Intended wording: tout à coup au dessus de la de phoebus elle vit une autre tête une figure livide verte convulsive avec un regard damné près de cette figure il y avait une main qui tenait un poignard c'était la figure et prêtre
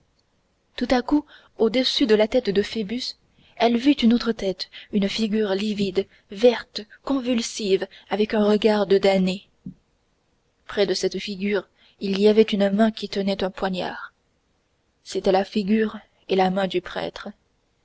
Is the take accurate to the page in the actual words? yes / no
no